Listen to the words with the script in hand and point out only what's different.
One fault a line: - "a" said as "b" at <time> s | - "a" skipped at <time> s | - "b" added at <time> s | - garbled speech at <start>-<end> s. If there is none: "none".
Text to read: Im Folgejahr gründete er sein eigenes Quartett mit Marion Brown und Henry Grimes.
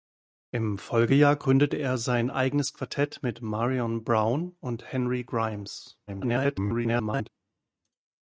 - garbled speech at 6.1-7.3 s